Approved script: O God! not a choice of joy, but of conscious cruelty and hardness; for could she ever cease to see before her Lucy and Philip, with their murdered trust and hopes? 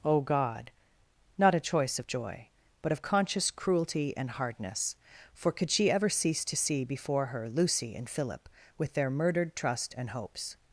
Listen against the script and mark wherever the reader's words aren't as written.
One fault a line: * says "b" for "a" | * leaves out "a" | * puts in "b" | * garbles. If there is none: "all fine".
all fine